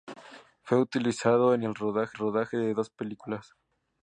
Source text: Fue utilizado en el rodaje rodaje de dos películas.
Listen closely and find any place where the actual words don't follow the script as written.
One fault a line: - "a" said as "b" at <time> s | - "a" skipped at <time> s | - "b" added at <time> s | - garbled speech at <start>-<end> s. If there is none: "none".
none